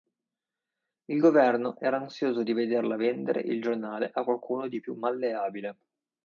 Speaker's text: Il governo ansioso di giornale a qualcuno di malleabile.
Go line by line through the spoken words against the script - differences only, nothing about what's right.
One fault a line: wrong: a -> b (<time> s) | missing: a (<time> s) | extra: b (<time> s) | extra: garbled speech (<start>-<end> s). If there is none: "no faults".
extra: era (1.8 s)
extra: vederla vendere il (2.5 s)
extra: più (4.8 s)